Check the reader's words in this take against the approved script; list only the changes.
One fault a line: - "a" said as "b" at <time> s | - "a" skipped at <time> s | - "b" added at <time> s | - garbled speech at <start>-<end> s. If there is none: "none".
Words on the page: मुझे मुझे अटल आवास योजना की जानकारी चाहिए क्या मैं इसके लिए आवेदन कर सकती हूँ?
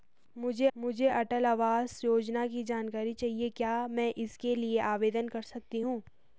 none